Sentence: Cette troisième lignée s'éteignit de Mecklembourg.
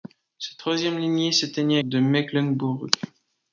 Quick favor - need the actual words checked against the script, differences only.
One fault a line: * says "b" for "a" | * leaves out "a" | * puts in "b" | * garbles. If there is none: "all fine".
all fine